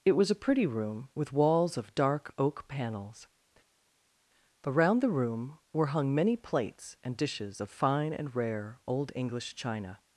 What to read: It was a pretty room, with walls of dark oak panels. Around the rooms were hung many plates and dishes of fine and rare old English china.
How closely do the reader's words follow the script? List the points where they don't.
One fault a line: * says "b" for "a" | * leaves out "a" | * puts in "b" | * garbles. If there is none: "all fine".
* says "room" for "rooms"